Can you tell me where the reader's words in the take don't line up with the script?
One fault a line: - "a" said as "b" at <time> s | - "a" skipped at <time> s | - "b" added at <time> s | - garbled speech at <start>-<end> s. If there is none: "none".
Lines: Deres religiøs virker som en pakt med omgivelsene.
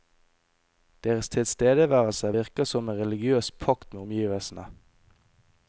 - "religiøs" said as "tilstedeværelse" at 1.3 s
- "religiøs" added at 3.0 s